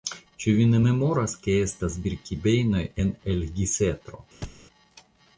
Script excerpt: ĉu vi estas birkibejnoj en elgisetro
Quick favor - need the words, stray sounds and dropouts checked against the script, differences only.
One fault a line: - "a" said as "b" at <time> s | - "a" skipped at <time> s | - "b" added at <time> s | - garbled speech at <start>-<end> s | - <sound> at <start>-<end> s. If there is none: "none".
- "ne memoras ke" added at 0.7 s
- thud at 4.4-4.7 s